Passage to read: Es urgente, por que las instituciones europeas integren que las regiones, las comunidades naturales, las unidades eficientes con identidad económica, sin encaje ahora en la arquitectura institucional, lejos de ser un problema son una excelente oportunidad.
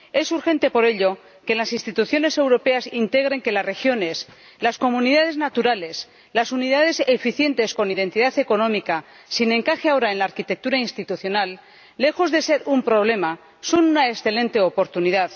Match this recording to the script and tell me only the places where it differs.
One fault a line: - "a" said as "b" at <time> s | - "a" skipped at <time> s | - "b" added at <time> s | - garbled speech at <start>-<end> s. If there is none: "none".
- "ello" added at 0.8 s